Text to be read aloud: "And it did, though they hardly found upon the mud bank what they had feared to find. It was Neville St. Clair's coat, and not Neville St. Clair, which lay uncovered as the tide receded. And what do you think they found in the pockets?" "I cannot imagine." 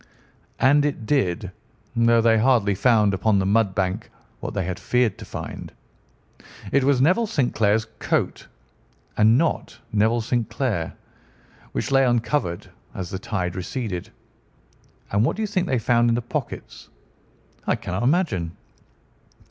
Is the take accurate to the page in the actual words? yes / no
yes